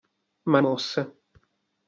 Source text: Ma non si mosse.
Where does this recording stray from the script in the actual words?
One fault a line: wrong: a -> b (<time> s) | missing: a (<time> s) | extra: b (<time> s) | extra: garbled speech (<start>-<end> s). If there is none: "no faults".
missing: non si (0.6 s)